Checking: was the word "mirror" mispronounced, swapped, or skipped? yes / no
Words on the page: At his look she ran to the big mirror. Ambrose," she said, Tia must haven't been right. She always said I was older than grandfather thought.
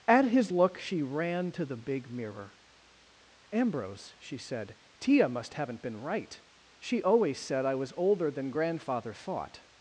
no